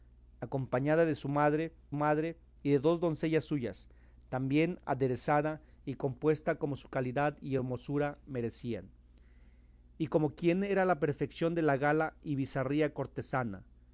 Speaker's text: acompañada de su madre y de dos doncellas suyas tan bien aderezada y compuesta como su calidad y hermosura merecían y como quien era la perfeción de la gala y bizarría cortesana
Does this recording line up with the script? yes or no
no